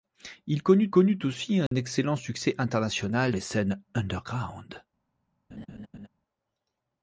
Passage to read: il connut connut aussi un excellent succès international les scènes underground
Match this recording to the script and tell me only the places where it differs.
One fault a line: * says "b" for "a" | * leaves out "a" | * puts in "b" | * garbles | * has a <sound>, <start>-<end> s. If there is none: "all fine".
* has a dropout, 1.7-1.7 s
* has a laugh, 5.5-6.1 s